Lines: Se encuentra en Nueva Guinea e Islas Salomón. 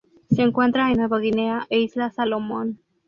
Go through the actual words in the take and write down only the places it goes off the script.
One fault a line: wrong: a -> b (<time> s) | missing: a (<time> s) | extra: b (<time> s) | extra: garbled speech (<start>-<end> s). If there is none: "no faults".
no faults